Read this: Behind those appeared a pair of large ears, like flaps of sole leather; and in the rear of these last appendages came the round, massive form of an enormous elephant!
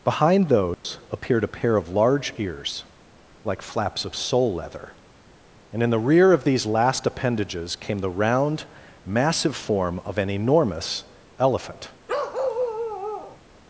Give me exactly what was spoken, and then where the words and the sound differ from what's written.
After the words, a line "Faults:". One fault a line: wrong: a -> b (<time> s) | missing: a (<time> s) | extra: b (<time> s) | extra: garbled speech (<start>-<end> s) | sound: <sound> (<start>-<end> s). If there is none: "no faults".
Behind those appeared a pair of large ears, like flaps of sole leather; and in the rear of these last appendages came the round, massive form of an enormous elephant!
Faults:
sound: dropout (0.7-0.8 s)
sound: bark (12.1-13.4 s)